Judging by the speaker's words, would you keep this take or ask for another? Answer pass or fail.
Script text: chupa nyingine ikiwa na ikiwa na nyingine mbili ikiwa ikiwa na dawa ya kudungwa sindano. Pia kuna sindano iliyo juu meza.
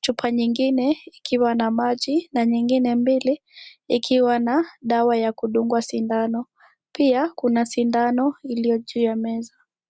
fail